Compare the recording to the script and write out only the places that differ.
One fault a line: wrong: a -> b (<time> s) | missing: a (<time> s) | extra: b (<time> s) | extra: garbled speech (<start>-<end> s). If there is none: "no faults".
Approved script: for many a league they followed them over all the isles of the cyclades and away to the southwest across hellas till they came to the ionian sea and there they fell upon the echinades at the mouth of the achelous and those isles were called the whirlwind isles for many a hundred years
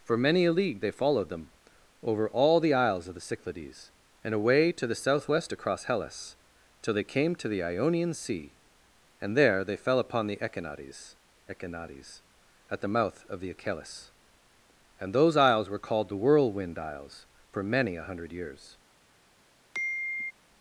extra: echinades (11.5 s)